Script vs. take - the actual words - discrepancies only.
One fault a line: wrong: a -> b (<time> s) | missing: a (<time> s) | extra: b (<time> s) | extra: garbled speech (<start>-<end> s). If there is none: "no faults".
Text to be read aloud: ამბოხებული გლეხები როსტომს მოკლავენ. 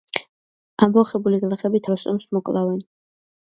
no faults